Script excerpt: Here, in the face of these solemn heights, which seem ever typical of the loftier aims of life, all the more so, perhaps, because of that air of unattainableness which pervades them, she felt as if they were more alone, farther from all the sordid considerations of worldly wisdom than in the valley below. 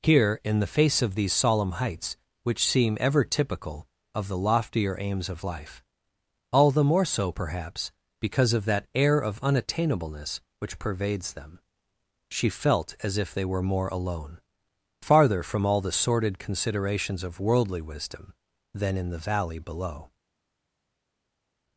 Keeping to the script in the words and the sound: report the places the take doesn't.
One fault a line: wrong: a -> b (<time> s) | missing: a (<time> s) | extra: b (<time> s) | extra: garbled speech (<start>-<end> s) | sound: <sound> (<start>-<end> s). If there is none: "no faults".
no faults